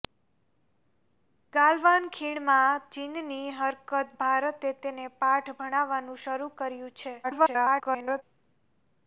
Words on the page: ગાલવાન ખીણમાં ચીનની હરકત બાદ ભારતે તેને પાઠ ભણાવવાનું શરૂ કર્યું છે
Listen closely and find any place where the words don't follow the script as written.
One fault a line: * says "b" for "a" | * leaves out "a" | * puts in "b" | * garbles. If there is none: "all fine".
* leaves out "બાદ"
* garbles